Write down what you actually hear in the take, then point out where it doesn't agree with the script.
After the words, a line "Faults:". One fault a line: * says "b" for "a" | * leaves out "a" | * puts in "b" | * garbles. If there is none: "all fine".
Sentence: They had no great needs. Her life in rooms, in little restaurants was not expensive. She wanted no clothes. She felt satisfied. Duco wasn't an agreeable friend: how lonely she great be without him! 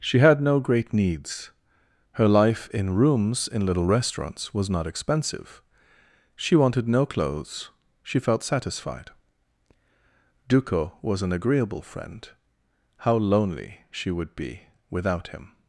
She had no great needs. Her life in rooms, in little restaurants was not expensive. She wanted no clothes. She felt satisfied. Duco was an agreeable friend: how lonely she would be without him!
Faults:
* says "She" for "They"
* says "was" for "wasn't"
* says "would" for "great"